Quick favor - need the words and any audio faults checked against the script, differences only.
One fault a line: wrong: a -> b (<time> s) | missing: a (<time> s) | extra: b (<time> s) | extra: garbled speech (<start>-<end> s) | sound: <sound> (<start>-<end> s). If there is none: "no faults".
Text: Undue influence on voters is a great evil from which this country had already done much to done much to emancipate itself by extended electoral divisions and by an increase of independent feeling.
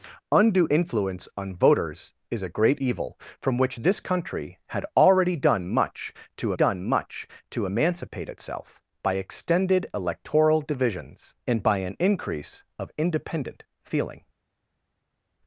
no faults